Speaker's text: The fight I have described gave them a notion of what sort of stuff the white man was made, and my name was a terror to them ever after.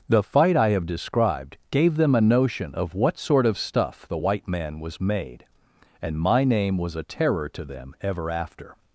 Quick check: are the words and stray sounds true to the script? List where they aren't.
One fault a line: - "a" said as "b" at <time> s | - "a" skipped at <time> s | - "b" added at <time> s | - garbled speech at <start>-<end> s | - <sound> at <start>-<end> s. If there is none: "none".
none